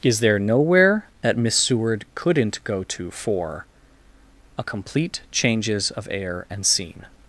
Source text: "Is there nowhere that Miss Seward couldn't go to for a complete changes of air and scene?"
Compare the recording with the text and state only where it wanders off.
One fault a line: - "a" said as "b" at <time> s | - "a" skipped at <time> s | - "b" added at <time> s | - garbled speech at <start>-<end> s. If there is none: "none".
none